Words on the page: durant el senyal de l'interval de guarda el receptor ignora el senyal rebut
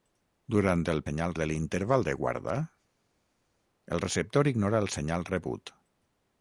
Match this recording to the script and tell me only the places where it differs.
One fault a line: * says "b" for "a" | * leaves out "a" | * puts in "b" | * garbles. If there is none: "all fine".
all fine